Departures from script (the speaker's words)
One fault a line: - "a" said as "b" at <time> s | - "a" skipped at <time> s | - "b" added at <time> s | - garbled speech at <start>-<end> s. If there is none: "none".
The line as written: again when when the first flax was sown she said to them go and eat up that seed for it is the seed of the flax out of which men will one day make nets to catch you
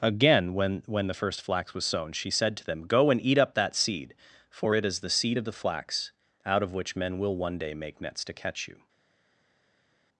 none